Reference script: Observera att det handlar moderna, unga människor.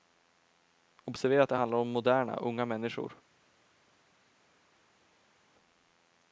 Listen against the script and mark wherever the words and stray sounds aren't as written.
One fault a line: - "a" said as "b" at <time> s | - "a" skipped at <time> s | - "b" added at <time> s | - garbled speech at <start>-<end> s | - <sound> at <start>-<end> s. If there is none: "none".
- "om" added at 1.8 s